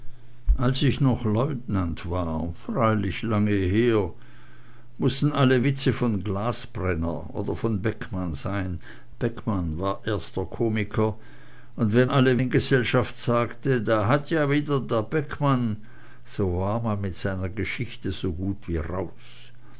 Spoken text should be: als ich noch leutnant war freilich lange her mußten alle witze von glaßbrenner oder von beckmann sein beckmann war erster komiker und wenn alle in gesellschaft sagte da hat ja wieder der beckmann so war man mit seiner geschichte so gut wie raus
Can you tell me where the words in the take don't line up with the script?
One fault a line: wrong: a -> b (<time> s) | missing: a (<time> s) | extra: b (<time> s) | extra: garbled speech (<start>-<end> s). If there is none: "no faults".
no faults